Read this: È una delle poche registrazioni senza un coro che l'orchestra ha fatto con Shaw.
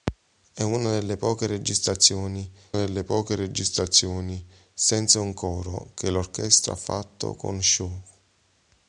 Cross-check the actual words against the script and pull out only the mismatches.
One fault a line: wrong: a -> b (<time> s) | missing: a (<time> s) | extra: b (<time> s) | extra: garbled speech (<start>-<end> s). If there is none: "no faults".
extra: delle poche registrazioni (2.7 s)